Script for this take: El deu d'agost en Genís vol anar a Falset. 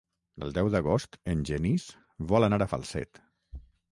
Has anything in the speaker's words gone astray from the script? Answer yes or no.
no